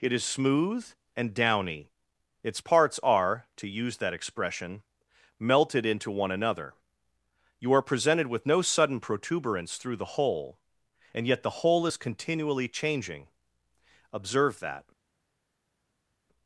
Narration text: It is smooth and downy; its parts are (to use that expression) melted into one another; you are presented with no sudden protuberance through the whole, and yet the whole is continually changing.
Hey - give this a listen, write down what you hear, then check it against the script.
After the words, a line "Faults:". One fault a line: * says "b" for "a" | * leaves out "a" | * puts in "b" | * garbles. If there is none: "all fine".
It is smooth and downy; its parts are (to use that expression) melted into one another; you are presented with no sudden protuberance through the whole, and yet the whole is continually changing. Observe that
Faults:
* puts in "Observe that"